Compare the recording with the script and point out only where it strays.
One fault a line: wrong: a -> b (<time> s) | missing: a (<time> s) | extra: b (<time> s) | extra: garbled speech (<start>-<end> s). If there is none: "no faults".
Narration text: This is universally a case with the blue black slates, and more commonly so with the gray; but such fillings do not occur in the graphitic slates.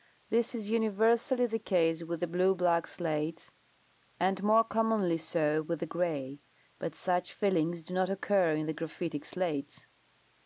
wrong: a -> the (1.4 s)